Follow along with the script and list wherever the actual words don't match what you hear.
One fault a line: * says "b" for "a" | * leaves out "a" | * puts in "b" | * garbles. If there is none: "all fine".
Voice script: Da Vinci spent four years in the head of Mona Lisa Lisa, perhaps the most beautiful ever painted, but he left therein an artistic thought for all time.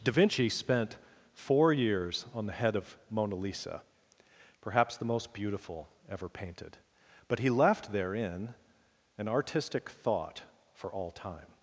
* says "on" for "in"
* leaves out "Lisa"